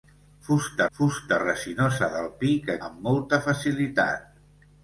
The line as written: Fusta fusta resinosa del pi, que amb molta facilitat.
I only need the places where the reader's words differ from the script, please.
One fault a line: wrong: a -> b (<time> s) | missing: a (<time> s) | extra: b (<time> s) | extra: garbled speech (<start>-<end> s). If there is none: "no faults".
no faults